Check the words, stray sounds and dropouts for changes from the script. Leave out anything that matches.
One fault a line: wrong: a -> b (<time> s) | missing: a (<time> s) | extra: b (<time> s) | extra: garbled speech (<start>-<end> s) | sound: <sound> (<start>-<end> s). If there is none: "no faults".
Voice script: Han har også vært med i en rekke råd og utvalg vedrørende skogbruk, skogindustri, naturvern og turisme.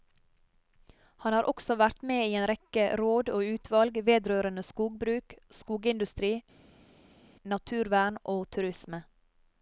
no faults